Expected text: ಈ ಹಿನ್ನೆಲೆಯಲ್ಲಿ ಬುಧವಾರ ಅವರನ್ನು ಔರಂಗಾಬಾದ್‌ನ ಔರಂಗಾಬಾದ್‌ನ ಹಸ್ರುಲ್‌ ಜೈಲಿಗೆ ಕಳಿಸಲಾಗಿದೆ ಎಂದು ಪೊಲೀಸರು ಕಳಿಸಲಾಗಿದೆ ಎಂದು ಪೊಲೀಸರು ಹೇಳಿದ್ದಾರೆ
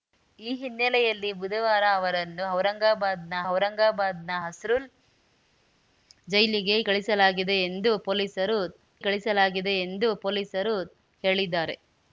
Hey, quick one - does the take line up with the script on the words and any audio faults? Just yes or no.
yes